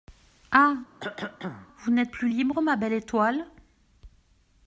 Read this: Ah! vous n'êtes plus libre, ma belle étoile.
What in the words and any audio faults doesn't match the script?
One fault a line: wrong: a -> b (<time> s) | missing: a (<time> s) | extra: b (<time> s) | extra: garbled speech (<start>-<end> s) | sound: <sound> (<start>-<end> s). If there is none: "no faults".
sound: cough (1.0-1.7 s)